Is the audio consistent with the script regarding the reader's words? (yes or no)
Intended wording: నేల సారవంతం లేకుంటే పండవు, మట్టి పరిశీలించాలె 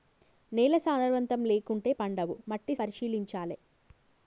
yes